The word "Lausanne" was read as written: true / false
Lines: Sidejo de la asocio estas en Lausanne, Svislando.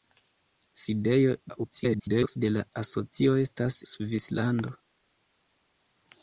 false